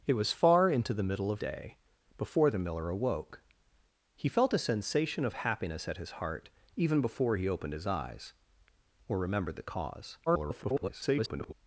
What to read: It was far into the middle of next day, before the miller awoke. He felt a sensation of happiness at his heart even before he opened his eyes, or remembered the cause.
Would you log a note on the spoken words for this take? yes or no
yes